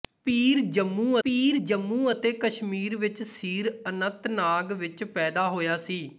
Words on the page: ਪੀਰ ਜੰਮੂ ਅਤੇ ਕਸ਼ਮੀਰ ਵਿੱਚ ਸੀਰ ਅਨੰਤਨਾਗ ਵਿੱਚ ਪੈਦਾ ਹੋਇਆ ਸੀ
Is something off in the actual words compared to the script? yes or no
yes